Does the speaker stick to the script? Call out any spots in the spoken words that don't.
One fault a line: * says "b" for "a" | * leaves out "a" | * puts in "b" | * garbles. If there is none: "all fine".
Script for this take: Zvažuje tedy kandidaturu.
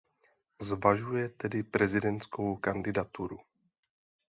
* puts in "prezidentskou"